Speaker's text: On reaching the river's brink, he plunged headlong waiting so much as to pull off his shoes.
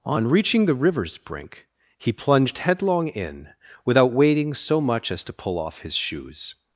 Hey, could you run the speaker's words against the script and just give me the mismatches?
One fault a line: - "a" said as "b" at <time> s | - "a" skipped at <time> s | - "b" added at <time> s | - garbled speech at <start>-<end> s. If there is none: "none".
- "in without" added at 3.1 s